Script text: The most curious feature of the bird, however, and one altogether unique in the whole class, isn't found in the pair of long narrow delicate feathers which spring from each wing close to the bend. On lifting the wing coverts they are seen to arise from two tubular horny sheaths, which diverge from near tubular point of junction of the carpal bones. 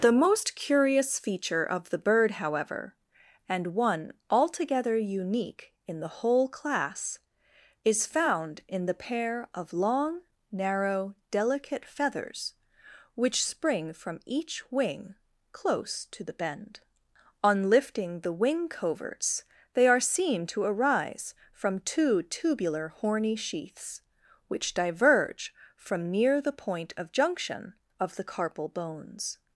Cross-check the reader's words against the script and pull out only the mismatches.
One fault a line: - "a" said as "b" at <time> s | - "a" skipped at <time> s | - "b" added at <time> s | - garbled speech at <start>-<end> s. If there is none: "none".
- "isn't" said as "is" at 7.8 s
- "tubular" said as "the" at 26.4 s